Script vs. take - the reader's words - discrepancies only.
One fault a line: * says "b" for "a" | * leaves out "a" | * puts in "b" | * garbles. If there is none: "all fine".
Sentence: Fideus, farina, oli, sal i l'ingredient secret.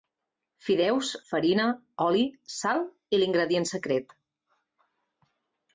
all fine